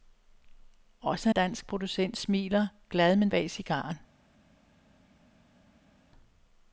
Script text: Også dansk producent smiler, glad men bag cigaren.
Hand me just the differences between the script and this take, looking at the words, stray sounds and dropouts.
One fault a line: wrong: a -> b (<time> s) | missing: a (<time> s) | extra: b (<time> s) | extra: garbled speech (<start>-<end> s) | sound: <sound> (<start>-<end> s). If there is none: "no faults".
no faults